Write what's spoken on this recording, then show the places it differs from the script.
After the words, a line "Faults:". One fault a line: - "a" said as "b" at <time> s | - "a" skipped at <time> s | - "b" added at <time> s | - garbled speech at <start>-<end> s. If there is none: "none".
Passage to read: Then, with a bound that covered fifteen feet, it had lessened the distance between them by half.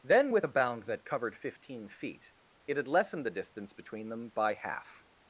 Then, with a bound that covered fifteen feet, it had lessened the distance between them by half.
Faults:
none